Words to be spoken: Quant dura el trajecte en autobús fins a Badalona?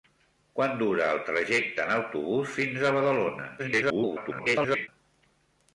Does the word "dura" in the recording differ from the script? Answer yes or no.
no